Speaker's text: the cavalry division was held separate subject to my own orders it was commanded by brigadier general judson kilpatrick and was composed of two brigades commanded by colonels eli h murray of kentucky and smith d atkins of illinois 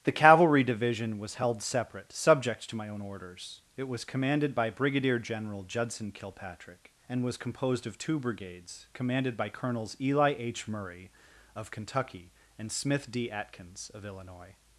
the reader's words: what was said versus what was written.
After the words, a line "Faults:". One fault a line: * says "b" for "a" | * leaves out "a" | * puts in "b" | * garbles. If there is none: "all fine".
the cavalry division was held separate subject to my own orders it was commanded by brigadier general judson kilpatrick and was composed of two brigades commanded by colonels eli h murray of kentucky and smith d atkins of illinois
Faults:
all fine